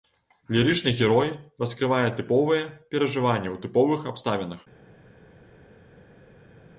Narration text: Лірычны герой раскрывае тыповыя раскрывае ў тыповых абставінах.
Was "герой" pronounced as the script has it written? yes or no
yes